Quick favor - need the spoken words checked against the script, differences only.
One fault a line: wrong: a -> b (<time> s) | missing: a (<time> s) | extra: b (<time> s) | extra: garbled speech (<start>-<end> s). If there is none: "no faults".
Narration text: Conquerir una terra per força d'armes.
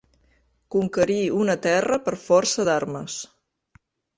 no faults